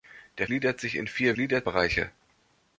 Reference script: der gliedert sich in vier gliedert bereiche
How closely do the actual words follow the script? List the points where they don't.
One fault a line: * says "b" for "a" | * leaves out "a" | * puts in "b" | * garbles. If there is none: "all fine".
all fine